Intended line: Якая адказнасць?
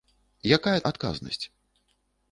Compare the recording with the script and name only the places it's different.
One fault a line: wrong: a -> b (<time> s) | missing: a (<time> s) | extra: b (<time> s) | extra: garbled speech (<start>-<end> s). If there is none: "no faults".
no faults